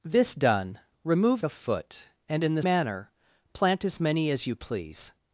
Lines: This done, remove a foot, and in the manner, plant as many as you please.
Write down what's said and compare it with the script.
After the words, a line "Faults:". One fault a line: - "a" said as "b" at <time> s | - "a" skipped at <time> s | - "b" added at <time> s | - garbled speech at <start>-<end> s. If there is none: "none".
This done, remove a foot, and in the manner, plant as many as you please.
Faults:
none